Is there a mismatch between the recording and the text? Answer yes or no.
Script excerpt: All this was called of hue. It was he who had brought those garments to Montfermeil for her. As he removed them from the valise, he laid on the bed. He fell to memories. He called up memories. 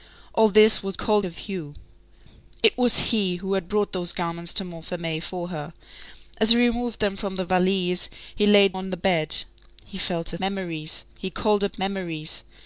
no